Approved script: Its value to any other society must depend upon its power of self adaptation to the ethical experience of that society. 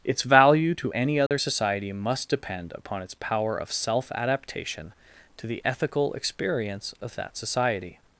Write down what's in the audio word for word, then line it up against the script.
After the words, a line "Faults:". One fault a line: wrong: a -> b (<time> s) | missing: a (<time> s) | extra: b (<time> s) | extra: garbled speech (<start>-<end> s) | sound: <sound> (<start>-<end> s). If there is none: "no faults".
Its value to any other society must depend upon its power of self adaptation to the ethical experience of that society.
Faults:
sound: dropout (1.3-1.3 s)